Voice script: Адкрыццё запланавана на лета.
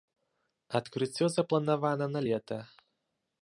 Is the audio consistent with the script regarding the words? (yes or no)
yes